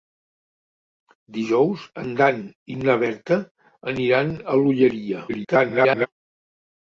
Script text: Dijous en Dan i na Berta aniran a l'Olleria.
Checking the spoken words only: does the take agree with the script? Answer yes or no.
no